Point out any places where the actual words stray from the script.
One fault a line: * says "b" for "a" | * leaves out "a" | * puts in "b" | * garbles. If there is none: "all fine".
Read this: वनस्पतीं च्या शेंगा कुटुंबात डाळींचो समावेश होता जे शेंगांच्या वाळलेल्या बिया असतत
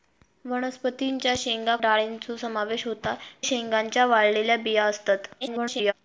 * leaves out "कुटुंबात"
* leaves out "जे"
* garbles